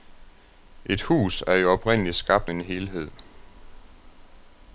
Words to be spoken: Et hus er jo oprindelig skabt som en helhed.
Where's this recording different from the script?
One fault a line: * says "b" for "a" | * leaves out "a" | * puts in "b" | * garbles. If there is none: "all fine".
* leaves out "som"